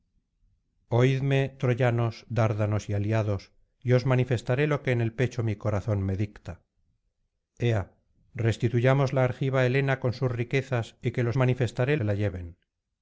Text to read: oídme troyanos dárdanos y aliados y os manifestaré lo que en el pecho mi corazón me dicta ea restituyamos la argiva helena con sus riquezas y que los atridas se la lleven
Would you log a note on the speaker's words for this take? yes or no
yes